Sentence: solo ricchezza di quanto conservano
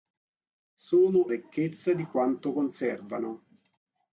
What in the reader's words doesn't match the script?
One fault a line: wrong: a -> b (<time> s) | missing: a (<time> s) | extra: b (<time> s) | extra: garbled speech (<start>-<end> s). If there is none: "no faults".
no faults